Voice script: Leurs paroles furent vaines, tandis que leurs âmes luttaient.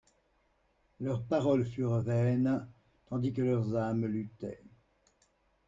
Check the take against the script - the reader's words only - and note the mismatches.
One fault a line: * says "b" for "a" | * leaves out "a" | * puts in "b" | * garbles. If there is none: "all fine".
all fine